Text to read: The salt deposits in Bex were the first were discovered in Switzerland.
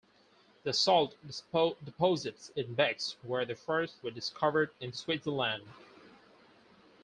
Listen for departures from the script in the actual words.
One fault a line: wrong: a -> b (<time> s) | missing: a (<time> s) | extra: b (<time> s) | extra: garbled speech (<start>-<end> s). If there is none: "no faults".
no faults